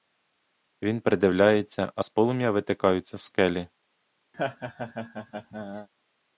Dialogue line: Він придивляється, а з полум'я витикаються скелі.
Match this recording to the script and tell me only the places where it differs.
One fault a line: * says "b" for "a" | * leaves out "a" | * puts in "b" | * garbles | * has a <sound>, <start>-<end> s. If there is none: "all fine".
* has a laugh, 4.3-5.9 s